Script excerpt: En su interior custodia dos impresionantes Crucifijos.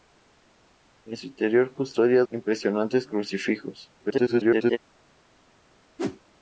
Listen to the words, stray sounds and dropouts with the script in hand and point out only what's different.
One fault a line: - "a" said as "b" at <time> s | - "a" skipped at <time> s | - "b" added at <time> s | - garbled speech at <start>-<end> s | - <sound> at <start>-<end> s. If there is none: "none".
- "dos" skipped at 2.2 s
- garbled speech at 4.0-4.8 s
- whoosh at 6.0-6.2 s